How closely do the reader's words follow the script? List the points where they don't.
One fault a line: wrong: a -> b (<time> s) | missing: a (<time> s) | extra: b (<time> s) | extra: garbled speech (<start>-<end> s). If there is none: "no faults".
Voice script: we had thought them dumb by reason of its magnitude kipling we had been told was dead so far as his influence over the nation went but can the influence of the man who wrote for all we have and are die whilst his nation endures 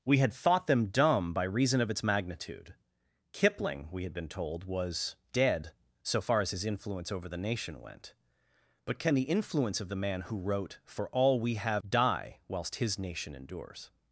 missing: and are (11.8 s)